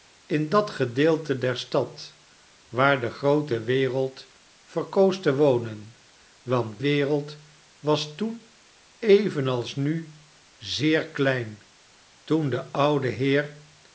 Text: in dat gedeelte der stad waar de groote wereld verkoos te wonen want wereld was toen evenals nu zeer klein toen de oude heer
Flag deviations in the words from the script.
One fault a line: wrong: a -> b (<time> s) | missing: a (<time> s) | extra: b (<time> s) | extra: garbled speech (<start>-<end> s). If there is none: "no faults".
no faults